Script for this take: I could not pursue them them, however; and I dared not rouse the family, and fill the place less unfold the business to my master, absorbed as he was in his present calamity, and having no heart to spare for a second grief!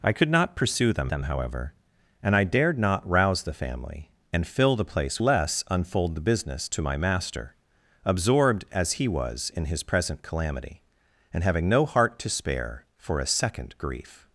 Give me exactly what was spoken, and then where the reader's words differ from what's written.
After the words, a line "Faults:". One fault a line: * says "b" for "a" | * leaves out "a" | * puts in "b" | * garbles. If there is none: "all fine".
I could not pursue them them, however; and I dared not rouse the family, and fill the place less unfold the business to my master, absorbed as he was in his present calamity, and having no heart to spare for a second grief!
Faults:
all fine